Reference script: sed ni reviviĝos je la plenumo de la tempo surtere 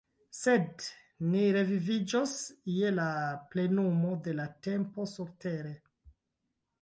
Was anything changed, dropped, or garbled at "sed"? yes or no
no